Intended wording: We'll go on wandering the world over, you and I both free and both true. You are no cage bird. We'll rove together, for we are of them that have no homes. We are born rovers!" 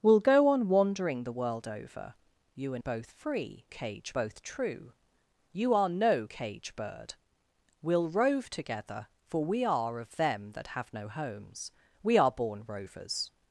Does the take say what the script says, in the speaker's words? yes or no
no